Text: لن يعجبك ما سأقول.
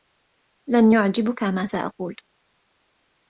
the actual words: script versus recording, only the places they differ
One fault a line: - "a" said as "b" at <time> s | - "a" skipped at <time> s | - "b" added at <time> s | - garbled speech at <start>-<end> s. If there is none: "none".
none